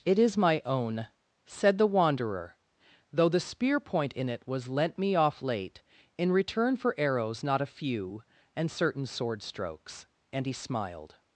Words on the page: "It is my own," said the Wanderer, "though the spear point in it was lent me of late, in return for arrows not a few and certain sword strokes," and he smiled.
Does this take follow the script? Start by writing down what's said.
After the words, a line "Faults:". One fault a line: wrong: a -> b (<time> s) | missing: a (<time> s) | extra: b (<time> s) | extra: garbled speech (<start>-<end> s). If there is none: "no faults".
"It is my own," said the Wanderer, "though the spear point in it was lent me off late, in return for arrows not a few and certain sword strokes," and he smiled.
Faults:
wrong: of -> off (5.2 s)